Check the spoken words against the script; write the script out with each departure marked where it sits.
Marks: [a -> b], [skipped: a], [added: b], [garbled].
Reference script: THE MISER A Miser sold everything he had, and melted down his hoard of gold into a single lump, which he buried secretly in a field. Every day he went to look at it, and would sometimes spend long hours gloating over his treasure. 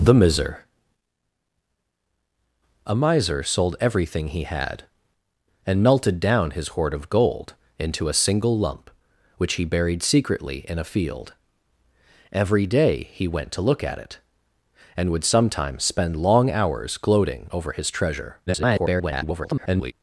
THE MISER A Miser sold everything he had, and melted down his hoard of gold into a single lump, which he buried secretly in a field. Every day he went to look at it, and would sometimes spend long hours gloating over his treasure. [garbled]